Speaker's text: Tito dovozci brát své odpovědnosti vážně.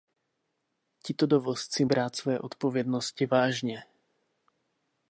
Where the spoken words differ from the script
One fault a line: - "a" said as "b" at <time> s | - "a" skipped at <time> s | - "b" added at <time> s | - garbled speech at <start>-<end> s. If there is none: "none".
none